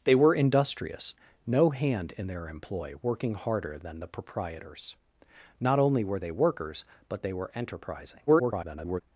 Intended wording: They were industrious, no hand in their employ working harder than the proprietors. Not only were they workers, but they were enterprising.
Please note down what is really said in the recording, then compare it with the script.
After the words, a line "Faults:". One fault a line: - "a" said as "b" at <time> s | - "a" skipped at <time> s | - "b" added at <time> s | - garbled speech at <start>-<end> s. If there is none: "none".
They were industrious, no hand in their employ working harder than the proprietors. Not only were they workers, but they were enterprising. [garbled]
Faults:
- garbled speech at 8.3-9.0 s